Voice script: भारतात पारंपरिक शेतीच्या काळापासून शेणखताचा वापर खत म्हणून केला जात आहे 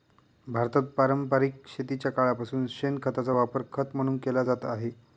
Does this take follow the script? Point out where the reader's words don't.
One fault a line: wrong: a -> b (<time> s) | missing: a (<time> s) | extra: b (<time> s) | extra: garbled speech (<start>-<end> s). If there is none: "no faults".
no faults